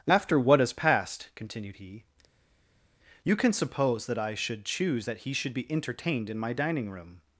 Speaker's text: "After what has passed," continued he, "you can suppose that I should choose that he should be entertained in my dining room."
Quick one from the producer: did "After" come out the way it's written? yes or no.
yes